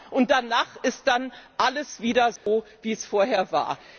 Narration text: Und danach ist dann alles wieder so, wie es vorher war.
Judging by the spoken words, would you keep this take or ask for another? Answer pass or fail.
pass